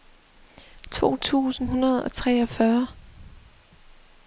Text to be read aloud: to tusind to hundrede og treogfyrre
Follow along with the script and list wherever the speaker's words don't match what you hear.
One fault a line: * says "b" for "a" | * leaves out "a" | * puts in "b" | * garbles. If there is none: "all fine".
* leaves out "to"